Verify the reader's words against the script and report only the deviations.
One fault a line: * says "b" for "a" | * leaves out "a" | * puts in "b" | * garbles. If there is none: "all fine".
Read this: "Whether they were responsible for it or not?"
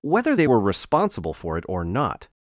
all fine